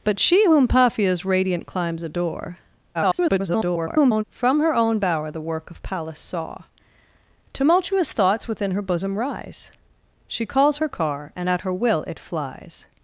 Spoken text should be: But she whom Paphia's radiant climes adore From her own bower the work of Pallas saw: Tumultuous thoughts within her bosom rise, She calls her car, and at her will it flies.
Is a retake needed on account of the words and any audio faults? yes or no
yes